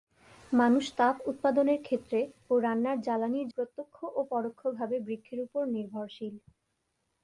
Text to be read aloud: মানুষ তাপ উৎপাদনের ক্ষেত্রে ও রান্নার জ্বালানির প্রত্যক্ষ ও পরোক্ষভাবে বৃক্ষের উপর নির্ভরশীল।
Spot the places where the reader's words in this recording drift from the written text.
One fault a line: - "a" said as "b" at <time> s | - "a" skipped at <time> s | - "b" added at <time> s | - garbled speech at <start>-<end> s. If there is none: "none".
none